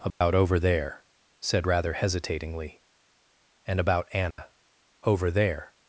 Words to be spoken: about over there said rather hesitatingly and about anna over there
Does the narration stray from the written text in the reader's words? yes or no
no